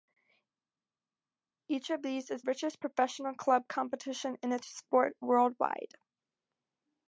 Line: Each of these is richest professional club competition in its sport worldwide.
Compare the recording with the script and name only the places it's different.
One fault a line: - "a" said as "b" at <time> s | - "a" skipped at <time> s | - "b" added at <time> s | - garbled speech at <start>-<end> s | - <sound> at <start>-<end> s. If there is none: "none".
none